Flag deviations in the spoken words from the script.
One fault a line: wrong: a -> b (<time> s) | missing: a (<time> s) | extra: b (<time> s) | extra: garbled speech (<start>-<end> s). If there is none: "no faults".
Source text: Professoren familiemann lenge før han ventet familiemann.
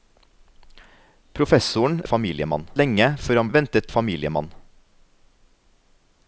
no faults